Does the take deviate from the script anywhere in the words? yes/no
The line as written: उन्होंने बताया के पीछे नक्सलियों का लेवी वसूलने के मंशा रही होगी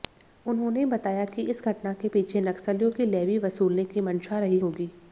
yes